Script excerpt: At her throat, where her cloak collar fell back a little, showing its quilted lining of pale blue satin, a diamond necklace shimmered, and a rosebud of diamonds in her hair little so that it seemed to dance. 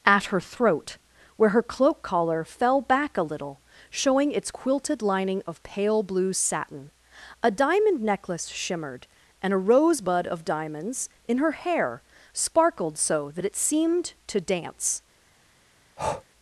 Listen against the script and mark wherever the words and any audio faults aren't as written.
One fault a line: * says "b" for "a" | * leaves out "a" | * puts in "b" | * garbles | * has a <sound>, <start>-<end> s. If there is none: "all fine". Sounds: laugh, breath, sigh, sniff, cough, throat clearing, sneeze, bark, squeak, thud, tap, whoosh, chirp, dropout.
* says "sparkled" for "little"
* has a breath, 16.0-16.2 s